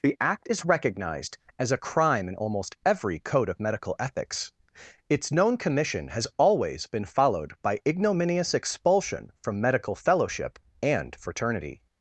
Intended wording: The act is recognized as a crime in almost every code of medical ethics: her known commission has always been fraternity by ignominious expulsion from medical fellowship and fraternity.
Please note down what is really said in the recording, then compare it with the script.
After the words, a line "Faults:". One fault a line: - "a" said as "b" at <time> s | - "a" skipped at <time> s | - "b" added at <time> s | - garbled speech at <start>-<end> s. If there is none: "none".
The act is recognized as a crime in almost every code of medical ethics: its known commission has always been followed by ignominious expulsion from medical fellowship and fraternity.
Faults:
- "her" said as "its" at 5.1 s
- "fraternity" said as "followed" at 7.0 s